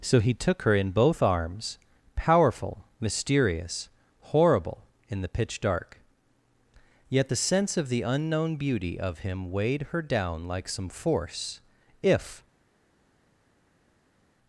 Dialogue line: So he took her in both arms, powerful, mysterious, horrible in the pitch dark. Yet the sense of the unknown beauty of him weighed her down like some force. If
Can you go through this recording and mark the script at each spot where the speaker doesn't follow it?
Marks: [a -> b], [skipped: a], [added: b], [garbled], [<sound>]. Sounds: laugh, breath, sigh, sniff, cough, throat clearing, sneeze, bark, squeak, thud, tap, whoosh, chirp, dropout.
So he took her in both arms, powerful, mysterious, horrible in the pitch dark. Yet the sense of the unknown beauty of him weighed her down like some force. If